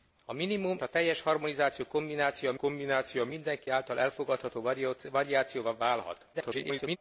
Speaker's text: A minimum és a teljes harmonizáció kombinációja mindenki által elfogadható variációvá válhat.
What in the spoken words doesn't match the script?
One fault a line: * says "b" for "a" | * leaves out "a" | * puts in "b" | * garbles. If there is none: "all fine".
* leaves out "és"
* puts in "kombinációja"
* garbles